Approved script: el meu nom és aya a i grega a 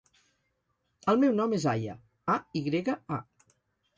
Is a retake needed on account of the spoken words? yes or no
no